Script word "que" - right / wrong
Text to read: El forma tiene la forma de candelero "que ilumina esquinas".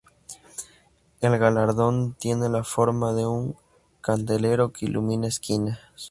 right